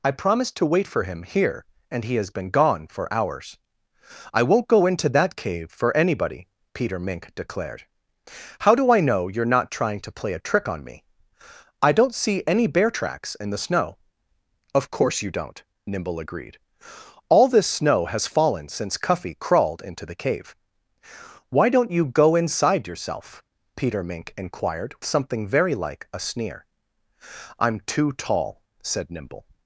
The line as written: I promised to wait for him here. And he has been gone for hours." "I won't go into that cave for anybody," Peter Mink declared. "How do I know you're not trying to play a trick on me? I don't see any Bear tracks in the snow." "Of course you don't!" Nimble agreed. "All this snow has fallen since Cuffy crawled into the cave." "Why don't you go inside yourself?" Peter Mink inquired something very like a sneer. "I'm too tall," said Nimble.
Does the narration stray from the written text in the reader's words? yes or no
no